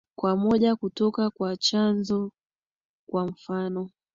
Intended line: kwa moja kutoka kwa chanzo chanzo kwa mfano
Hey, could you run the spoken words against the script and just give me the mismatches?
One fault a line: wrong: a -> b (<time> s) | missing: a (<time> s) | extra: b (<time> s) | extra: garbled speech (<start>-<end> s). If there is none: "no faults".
missing: chanzo (2.3 s)